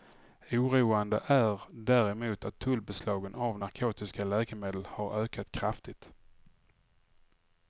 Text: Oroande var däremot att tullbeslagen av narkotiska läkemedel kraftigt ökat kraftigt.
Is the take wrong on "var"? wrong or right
wrong